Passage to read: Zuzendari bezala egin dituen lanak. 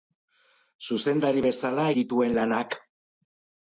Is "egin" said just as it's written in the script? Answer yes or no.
no